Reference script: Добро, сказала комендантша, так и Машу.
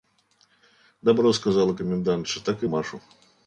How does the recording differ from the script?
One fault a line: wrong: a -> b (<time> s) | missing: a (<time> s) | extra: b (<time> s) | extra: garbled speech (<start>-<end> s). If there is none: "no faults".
no faults